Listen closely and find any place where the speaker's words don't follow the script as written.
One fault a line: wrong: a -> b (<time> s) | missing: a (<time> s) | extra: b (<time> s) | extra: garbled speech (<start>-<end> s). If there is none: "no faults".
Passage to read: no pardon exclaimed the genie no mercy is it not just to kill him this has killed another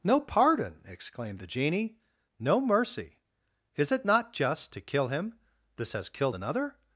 no faults